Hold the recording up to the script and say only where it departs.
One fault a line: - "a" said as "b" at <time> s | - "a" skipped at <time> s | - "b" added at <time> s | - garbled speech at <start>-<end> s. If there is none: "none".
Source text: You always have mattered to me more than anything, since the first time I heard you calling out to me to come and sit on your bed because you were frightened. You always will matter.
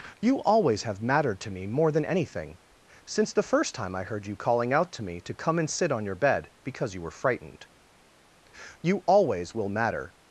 none